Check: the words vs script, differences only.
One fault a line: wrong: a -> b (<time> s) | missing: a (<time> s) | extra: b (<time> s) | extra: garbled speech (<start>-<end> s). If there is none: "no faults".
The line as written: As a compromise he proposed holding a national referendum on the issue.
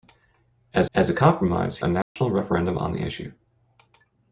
extra: as (0.9 s)
missing: he proposed holding (1.8 s)